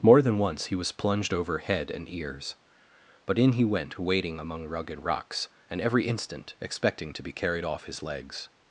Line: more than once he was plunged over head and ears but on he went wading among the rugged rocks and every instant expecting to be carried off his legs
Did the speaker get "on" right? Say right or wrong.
wrong